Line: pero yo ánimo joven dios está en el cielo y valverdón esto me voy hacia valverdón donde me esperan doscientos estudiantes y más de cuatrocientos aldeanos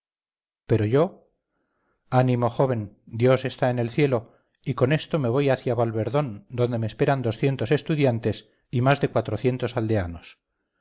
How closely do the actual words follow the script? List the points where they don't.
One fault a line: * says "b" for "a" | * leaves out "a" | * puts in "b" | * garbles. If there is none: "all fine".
* says "con" for "valverdón"